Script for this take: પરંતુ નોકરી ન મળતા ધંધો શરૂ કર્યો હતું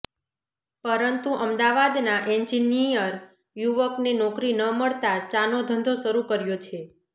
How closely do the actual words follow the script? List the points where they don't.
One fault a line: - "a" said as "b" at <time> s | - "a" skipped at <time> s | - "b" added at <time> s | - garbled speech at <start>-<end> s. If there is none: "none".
- "અમદાવાદના એન્જિનિયર યુવકને" added at 1.4 s
- "ચાનો" added at 5.3 s
- "હતું" said as "છે" at 6.6 s